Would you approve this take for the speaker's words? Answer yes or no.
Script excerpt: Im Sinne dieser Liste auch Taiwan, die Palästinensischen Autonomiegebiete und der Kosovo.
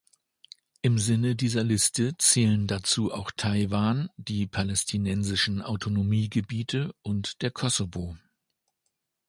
no